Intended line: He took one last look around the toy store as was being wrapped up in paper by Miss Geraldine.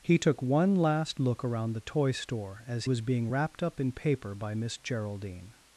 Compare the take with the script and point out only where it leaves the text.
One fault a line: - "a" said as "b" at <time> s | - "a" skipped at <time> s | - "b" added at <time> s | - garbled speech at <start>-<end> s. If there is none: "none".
none